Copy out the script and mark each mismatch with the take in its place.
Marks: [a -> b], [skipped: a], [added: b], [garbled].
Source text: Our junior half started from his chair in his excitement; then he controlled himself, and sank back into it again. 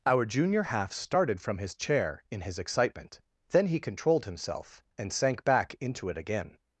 Our junior half started from his chair in his excitement; then he controlled himself, and sank back into it again.